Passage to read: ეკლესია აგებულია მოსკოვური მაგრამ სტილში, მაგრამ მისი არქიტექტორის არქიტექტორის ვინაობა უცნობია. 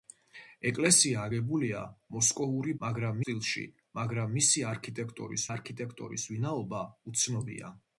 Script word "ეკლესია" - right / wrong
right